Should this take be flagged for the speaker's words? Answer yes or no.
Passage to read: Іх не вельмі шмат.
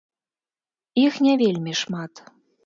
no